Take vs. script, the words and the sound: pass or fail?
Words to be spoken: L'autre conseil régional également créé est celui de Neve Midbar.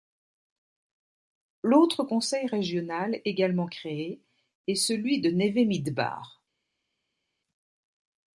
pass